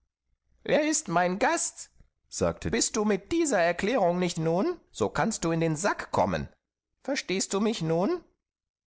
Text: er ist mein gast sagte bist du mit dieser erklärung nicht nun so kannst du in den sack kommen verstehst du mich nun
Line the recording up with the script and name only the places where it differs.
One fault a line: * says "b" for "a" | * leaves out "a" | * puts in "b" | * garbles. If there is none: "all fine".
all fine